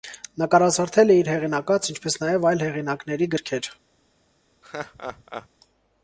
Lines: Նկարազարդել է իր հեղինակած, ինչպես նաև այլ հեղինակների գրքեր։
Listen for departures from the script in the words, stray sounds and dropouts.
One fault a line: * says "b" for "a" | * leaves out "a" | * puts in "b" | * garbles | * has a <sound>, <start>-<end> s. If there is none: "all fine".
* has a laugh, 4.6-5.5 s